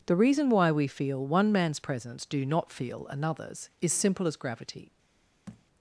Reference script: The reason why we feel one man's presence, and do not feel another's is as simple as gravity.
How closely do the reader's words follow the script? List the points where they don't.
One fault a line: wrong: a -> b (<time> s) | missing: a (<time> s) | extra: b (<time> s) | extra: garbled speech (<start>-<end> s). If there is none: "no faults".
missing: and (2.2 s)
missing: as (3.9 s)